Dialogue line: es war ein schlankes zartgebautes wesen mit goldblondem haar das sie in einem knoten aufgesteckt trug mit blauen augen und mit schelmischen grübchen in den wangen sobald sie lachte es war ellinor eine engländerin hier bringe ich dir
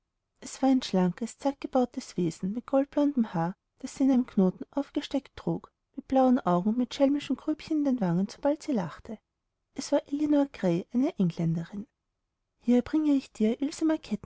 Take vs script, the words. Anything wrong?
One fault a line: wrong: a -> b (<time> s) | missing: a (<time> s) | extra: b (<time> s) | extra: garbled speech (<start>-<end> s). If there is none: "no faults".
extra: grey (10.5 s)